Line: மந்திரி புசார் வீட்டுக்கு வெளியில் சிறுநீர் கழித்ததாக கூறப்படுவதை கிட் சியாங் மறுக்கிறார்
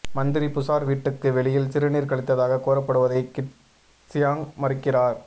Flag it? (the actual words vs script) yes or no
no